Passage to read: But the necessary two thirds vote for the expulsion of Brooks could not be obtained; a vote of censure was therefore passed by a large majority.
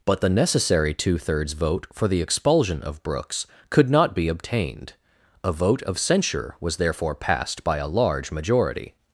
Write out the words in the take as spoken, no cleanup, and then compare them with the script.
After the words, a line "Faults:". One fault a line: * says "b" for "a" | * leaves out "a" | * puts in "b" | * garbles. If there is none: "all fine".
But the necessary two thirds vote for the expulsion of Brooks could not be obtained; a vote of censure was therefore passed by a large majority.
Faults:
all fine